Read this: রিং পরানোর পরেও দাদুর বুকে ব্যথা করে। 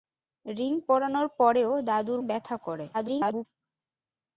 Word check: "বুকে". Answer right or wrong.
wrong